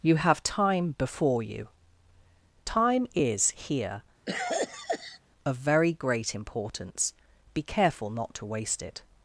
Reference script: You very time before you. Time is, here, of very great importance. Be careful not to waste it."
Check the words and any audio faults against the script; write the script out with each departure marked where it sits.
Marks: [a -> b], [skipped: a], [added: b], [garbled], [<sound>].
You [very -> have] time before you. Time is, here, [cough] of very great importance. Be careful not to waste it."